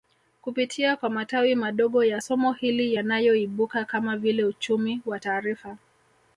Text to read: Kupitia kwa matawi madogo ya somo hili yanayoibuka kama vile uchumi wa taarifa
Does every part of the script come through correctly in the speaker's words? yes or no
yes